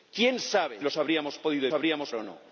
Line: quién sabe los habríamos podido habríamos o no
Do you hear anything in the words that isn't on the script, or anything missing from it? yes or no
no